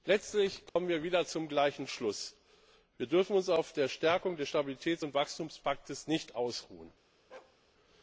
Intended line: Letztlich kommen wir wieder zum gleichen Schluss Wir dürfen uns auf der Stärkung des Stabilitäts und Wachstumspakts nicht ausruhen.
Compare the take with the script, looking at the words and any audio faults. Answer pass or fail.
fail